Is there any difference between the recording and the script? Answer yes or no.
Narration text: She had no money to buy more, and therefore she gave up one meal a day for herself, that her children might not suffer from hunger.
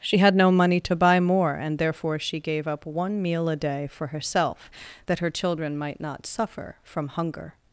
no